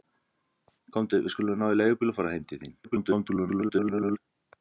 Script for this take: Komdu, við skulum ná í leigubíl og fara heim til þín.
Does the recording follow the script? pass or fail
fail